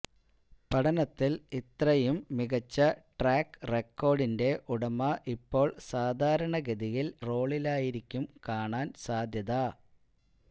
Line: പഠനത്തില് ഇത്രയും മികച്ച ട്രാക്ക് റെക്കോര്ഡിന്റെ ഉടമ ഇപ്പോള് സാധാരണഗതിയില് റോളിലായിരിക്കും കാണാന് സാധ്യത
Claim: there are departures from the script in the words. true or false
false